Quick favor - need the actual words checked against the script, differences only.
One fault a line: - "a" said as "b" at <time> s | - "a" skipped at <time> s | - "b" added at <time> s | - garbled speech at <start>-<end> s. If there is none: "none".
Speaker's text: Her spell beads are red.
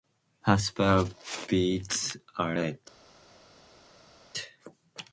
none